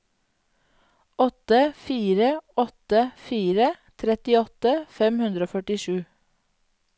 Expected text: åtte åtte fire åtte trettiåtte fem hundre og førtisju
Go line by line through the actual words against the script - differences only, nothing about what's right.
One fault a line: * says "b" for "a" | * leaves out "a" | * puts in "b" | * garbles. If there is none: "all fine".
* puts in "fire"
* leaves out "åtte"